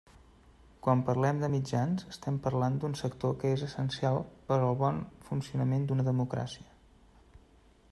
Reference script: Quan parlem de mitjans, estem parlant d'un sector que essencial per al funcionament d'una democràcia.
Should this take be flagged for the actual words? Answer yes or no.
yes